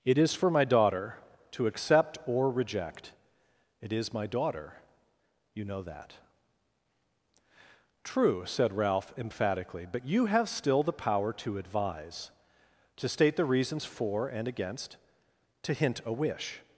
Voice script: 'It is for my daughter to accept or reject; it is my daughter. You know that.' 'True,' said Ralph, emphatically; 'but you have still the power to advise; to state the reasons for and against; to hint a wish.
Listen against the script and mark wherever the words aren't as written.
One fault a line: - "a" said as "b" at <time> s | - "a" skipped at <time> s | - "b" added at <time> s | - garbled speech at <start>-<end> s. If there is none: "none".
none